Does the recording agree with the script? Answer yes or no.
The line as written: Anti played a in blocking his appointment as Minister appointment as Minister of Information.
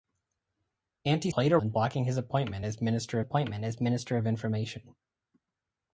yes